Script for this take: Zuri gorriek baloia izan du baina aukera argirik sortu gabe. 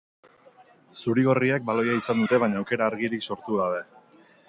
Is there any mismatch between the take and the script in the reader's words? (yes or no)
yes